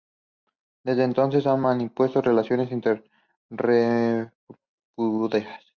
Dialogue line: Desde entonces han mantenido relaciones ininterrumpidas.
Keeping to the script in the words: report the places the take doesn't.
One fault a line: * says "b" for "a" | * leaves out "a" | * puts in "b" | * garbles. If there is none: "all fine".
all fine